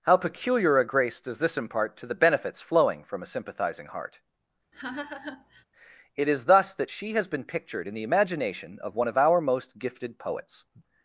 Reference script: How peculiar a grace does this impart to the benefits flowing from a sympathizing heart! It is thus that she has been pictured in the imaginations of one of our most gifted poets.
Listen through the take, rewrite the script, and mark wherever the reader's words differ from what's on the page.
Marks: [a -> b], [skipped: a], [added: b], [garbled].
How peculiar a grace does this impart to the benefits flowing from a sympathizing heart! It is thus that she has been pictured in the [imaginations -> imagination] of one of our most gifted poets.